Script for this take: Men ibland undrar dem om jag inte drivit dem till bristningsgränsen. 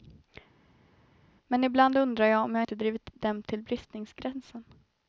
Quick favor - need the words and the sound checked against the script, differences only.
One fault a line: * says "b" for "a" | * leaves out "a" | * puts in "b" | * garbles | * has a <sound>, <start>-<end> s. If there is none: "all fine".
* says "jag" for "dem"